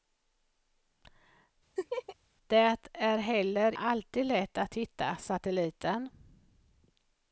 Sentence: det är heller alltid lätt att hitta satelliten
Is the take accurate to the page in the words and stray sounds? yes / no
no